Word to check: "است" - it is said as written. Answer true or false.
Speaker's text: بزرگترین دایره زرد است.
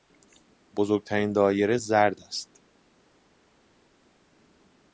true